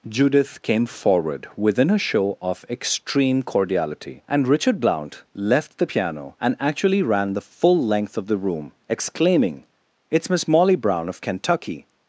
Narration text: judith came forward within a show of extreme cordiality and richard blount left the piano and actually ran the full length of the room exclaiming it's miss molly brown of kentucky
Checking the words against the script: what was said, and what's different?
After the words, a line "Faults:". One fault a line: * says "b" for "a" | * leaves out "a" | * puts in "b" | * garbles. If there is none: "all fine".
judith came forward within a show of extreme cordiality and richard blount left the piano and actually ran the full length of the room exclaiming it's miss molly brown of kentucky
Faults:
all fine